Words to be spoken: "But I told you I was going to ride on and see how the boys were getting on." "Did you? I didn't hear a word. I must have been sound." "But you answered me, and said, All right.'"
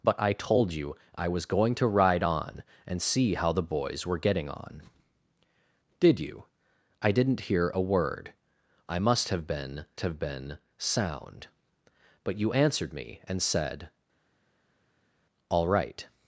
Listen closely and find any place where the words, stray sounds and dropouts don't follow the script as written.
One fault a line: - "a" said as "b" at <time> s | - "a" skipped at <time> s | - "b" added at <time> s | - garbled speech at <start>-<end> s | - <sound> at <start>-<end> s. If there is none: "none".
- "have been" added at 10.0 s